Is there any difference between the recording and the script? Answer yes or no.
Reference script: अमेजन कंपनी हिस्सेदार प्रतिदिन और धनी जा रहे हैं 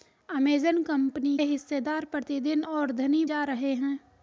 no